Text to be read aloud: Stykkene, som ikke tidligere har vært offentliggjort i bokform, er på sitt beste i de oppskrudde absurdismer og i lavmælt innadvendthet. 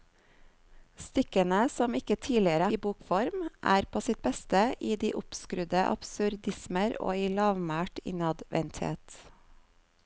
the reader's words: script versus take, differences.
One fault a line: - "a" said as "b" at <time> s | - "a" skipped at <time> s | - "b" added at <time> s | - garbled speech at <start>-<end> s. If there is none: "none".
- "har vært offentliggjort" skipped at 2.7 s